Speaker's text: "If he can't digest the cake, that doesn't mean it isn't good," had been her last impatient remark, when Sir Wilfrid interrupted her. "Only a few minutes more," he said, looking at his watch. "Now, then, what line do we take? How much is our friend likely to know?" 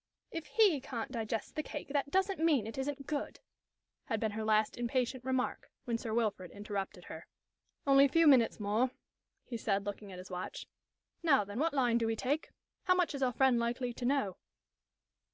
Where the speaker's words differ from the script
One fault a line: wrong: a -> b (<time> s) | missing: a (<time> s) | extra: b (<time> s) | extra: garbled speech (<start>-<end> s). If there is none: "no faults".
no faults